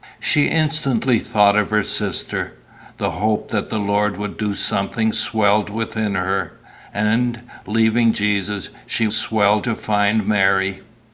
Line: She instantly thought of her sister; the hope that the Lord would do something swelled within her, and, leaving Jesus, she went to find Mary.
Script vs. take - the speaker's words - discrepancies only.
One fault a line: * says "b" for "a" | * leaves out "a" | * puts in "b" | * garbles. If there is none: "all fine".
* says "swelled" for "went"